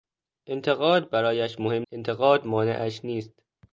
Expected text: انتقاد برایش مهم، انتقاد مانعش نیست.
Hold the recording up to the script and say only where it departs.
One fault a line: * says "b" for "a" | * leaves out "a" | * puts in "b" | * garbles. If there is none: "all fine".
all fine